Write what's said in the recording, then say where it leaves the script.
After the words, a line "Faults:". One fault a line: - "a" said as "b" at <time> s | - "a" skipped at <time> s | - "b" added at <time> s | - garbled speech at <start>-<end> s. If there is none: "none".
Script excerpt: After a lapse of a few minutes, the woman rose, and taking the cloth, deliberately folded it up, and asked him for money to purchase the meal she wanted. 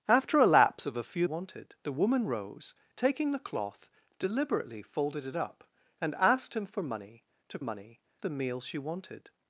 After a lapse of a few wanted, the woman rose, taking the cloth, deliberately folded it up, and asked him for money to money the meal she wanted.
Faults:
- "minutes" said as "wanted" at 1.2 s
- "and" skipped at 2.7 s
- "purchase" said as "money" at 7.6 s